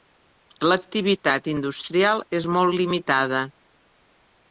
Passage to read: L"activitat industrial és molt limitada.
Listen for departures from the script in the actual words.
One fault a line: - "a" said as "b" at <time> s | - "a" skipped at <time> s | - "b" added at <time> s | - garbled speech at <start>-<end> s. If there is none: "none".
none